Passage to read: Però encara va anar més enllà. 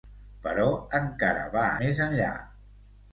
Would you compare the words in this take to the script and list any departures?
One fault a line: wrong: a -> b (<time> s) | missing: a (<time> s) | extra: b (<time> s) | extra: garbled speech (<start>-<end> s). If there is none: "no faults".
missing: anar (1.7 s)